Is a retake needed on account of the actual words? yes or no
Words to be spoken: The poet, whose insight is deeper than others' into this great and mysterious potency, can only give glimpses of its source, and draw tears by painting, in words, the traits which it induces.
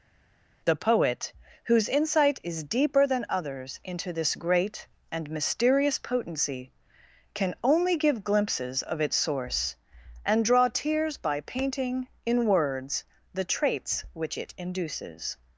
no